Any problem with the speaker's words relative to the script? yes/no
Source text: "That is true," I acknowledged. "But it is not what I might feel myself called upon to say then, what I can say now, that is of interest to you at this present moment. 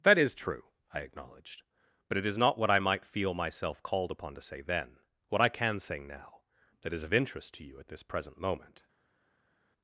no